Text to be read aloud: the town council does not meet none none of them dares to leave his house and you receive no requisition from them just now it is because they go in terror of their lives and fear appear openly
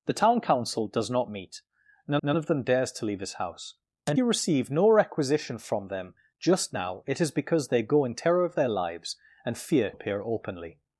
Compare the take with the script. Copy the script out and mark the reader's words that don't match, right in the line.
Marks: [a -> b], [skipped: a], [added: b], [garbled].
the town council does not meet none none of them dares to leave his house and you receive no requisition from them just now it is because they go in terror of their lives and fear appear openly